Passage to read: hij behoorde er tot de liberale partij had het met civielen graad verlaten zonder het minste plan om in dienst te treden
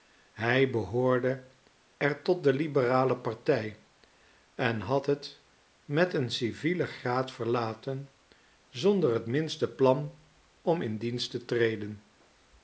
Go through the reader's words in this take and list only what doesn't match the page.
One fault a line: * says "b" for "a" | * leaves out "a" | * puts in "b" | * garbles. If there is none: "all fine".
* puts in "en"
* puts in "een"